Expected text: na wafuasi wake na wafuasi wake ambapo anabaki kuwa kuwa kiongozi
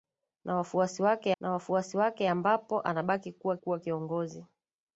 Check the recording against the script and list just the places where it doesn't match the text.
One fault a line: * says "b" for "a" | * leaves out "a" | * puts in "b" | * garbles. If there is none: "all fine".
all fine